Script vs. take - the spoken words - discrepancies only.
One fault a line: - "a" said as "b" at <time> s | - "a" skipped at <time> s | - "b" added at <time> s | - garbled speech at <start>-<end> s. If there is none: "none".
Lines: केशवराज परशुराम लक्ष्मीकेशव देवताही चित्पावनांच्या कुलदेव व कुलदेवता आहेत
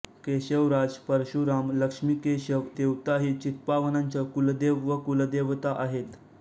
none